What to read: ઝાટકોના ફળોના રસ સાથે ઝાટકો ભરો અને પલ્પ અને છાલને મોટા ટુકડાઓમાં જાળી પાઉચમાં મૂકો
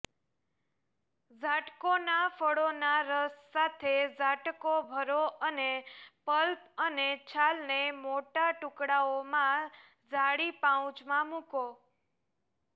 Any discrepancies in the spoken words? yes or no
no